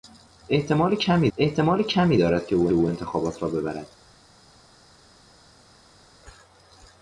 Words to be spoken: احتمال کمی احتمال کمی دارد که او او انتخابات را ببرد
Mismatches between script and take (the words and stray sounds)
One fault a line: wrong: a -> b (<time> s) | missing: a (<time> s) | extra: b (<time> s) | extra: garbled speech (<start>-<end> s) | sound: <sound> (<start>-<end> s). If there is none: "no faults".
no faults